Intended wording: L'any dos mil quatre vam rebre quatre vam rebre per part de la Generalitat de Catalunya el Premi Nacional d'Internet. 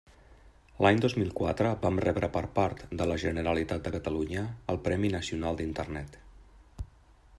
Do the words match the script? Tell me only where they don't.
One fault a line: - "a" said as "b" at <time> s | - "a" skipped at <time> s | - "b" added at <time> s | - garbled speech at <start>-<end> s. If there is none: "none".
- "quatre vam rebre" skipped at 2.3 s